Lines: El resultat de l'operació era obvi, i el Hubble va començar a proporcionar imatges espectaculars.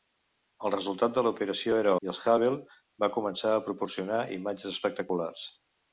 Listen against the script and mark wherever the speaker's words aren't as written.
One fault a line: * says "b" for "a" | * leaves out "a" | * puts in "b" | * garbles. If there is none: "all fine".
* leaves out "obvi"